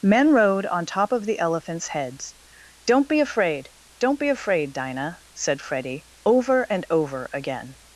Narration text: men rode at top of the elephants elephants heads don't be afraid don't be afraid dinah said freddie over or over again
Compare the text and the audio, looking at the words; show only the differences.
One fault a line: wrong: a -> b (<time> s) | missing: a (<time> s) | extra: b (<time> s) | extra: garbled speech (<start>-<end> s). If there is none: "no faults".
wrong: at -> on (0.7 s)
missing: elephants (1.9 s)
wrong: or -> and (6.7 s)